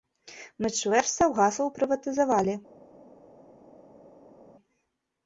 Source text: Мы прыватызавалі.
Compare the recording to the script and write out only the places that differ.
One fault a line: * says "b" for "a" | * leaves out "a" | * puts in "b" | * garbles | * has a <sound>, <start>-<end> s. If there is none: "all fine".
* puts in "чвэрць саўгасаў"